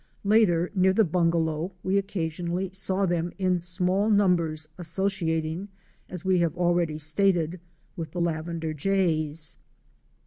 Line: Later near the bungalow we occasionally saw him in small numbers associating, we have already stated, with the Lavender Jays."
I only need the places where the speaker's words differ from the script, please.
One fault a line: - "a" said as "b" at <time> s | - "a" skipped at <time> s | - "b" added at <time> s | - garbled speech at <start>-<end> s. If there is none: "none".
- "him" said as "them" at 3.0 s
- "as" added at 6.1 s